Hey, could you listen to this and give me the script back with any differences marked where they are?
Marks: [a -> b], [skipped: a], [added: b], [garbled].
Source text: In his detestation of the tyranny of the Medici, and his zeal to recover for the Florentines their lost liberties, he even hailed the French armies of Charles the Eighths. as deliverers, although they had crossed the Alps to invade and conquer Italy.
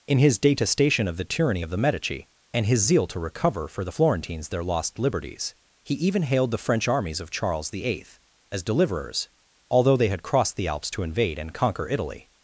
In his detestation of the tyranny of the Medici, and his zeal to recover for the Florentines their lost liberties, he even hailed the French armies of Charles the [Eighths. -> Eighth] as deliverers, although they had crossed the Alps to invade and conquer Italy.